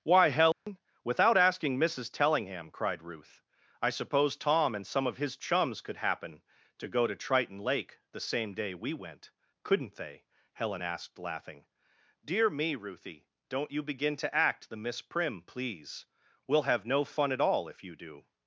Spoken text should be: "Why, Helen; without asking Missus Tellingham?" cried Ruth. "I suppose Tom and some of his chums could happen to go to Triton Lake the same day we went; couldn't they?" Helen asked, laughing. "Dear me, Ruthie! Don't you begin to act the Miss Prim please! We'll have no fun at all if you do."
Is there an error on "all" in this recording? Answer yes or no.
no